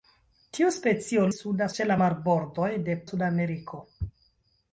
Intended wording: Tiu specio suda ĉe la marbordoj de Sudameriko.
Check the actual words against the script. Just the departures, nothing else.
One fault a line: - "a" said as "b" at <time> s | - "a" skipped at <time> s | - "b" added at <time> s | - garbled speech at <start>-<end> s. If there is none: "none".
none